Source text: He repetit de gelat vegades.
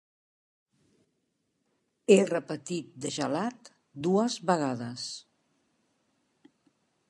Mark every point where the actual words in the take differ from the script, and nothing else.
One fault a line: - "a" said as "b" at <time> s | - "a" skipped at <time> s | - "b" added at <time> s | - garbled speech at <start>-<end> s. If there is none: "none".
- "dues" added at 4.1 s